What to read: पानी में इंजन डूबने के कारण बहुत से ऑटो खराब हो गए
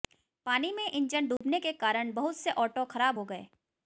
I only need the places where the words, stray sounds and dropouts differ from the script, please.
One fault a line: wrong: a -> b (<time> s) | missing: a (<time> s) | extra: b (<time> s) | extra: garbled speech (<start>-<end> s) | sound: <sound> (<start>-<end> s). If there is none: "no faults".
sound: dropout (1.4-1.4 s)